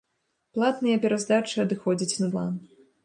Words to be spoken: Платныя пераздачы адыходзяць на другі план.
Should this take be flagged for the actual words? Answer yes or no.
yes